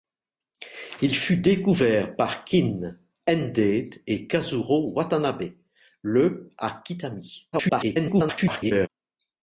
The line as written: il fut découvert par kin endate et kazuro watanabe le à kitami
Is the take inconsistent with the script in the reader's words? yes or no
yes